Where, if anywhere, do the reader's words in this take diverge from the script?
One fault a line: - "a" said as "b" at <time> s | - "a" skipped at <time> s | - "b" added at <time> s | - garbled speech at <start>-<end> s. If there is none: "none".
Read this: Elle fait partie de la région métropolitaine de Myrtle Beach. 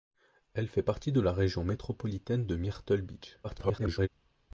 - garbled speech at 3.4-4.1 s